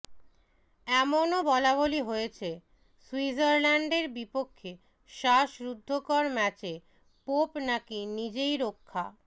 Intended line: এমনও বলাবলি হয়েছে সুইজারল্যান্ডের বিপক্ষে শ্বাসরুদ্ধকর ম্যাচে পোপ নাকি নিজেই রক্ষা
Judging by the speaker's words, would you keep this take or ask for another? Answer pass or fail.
pass